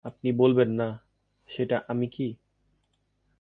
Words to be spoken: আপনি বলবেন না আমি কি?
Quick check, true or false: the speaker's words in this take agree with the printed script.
false